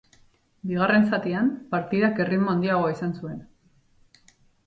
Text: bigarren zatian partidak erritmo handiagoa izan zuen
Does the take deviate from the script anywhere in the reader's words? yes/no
no